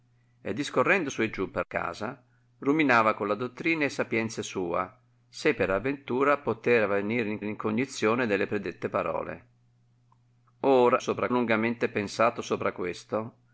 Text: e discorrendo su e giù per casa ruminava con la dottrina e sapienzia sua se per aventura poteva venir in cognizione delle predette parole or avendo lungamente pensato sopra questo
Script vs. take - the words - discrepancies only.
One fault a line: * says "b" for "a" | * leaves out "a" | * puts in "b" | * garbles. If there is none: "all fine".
* puts in "in"
* says "sopra" for "avendo"